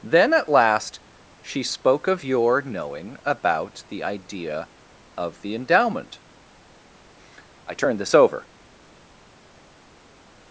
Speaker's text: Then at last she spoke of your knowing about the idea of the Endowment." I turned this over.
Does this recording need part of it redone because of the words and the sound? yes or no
no